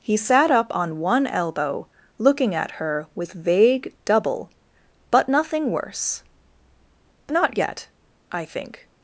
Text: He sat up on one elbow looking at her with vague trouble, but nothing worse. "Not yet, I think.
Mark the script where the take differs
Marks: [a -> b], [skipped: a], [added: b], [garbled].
He sat up on one elbow looking at her with vague [trouble, -> double] but nothing worse. "Not yet, I think.